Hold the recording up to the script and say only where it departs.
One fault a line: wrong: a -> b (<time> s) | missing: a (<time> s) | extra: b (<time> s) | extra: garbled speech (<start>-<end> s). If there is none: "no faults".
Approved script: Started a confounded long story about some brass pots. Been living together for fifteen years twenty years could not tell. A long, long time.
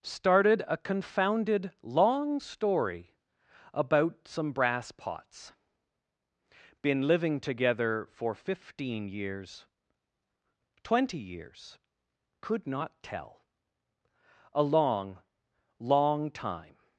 no faults